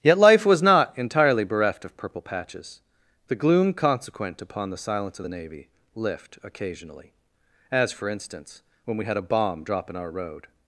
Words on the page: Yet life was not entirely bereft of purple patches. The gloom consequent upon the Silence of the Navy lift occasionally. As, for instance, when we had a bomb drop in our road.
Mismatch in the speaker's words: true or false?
false